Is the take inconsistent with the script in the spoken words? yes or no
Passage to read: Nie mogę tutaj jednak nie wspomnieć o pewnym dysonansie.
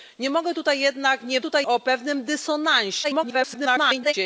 yes